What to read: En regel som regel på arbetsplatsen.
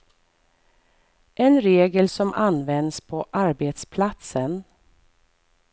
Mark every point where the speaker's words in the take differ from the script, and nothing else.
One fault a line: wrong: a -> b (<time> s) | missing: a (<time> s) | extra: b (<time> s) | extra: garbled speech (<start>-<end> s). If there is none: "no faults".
wrong: regel -> används (2.3 s)